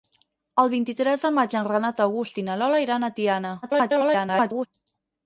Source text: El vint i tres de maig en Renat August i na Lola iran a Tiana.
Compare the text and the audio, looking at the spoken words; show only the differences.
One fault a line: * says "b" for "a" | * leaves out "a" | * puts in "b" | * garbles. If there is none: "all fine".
* garbles